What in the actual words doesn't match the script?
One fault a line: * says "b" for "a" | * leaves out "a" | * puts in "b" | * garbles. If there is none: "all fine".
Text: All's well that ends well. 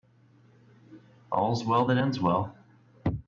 all fine